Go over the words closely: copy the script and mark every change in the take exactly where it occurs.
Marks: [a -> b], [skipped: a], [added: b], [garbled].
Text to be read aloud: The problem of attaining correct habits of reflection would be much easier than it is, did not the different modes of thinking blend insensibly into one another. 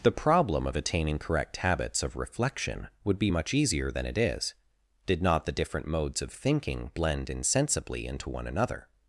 The problem of attaining correct habits of reflection would be much easier than it is, did not the different modes of thinking blend insensibly into one another.